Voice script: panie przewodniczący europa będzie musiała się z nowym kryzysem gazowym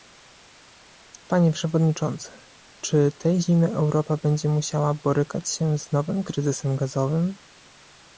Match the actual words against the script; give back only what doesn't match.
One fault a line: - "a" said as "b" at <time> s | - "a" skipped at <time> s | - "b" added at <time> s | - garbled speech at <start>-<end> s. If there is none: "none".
- "czy tej zimy" added at 2.8 s
- "borykać" added at 4.9 s